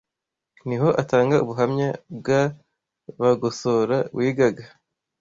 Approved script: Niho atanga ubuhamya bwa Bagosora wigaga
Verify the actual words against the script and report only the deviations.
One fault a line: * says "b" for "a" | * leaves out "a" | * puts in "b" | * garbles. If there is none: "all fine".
all fine